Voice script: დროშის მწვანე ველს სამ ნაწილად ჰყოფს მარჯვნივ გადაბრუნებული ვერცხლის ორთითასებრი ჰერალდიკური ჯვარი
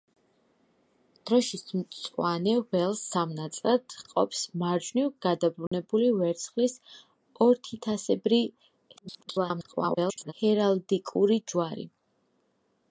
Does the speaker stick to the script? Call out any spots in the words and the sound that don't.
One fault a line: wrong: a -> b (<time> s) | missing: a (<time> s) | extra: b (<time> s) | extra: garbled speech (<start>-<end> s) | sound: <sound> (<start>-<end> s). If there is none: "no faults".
sound: dropout (5.7-5.7 s)
extra: garbled speech (9.0-10.3 s)